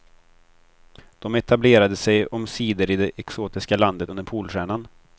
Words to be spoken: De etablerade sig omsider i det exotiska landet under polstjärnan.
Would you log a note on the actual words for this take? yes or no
no